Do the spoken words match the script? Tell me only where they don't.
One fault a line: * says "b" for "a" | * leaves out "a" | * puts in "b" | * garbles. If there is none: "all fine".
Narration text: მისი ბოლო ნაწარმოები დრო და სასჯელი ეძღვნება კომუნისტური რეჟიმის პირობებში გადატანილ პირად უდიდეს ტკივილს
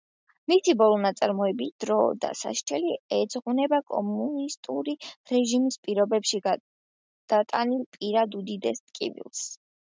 all fine